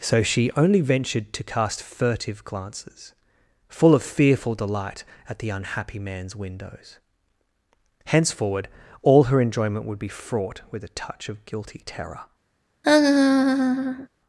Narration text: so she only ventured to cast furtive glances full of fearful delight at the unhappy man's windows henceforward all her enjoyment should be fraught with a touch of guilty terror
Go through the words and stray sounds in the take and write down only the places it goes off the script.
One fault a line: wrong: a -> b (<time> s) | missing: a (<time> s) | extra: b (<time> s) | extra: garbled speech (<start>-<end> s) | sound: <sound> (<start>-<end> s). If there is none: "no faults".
wrong: should -> would (9.8 s)
sound: laugh (12.8-14.1 s)